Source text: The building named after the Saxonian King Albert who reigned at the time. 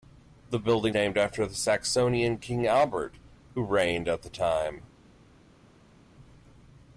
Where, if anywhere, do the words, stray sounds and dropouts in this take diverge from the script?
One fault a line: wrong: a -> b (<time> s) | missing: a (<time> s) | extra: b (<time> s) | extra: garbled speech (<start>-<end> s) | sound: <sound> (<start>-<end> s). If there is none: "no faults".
no faults